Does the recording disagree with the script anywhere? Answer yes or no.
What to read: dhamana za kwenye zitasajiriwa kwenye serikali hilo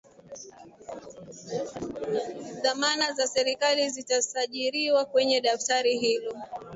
yes